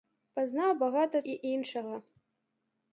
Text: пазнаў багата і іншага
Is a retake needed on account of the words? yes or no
no